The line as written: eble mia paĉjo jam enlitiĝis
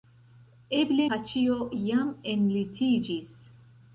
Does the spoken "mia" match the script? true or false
false